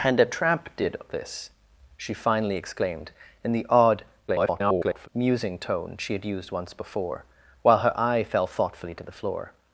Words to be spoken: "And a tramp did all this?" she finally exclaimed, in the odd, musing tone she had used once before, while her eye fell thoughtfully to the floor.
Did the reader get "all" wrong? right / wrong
wrong